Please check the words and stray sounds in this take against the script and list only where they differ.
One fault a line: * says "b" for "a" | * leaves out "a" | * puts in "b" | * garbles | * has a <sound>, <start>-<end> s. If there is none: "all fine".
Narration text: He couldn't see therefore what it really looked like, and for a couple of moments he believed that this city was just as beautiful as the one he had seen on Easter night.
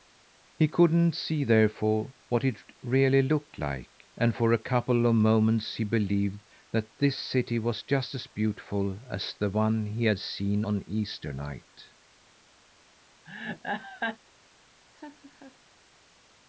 * has a laugh, 13.3-14.2 s
* has a laugh, 14.9-15.6 s